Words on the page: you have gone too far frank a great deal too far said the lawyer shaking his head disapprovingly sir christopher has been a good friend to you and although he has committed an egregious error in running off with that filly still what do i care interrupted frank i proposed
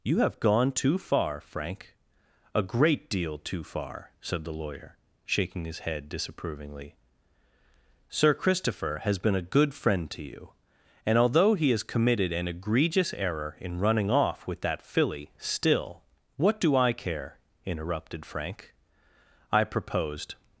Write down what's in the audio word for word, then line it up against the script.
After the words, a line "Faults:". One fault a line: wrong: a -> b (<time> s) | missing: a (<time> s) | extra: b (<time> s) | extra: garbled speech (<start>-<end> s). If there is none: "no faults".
you have gone too far frank a great deal too far said the lawyer shaking his head disapprovingly sir christopher has been a good friend to you and although he has committed an egregious error in running off with that filly still what do i care interrupted frank i proposed
Faults:
no faults